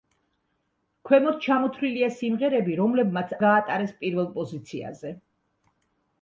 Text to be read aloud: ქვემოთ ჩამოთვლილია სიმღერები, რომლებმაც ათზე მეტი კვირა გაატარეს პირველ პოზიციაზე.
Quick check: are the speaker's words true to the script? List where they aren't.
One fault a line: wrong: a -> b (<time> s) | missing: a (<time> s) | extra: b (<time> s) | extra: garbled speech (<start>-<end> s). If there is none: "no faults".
missing: ათზე მეტი კვირა (3.4 s)